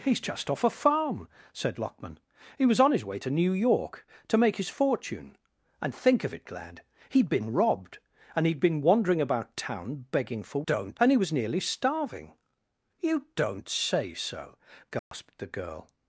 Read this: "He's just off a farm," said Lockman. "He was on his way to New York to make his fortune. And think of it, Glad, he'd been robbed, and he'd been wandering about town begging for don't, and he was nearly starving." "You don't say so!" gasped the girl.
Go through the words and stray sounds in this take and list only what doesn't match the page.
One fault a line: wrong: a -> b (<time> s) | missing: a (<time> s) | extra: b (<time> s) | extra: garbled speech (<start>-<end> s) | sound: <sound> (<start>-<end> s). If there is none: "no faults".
sound: dropout (15.0-15.1 s)